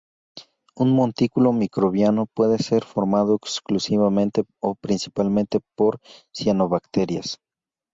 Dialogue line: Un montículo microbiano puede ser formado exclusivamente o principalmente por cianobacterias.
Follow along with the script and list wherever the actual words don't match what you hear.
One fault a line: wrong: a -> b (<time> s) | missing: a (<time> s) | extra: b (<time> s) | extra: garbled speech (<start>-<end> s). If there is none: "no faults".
no faults